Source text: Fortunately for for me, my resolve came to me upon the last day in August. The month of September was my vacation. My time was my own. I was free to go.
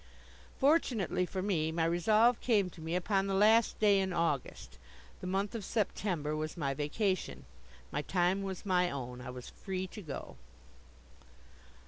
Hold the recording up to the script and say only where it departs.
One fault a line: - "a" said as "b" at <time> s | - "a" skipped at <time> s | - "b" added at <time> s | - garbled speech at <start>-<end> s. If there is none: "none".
- "for" skipped at 1.4 s